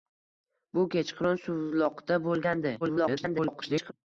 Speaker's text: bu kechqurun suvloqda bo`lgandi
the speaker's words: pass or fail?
fail